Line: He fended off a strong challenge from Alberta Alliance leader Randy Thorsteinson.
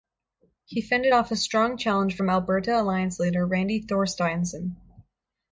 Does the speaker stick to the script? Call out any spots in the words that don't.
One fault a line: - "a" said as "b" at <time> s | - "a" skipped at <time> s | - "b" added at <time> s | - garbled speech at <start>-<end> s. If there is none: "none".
none